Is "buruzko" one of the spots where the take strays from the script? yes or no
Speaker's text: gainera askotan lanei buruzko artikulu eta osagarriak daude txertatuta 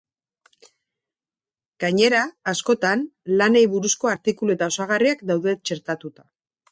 no